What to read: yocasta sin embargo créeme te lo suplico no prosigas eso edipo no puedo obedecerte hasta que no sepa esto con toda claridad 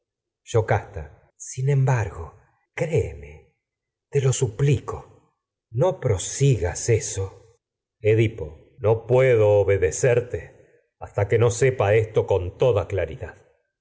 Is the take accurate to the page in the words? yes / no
yes